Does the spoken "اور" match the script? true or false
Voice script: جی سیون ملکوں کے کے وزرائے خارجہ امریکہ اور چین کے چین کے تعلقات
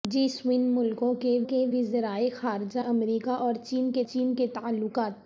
true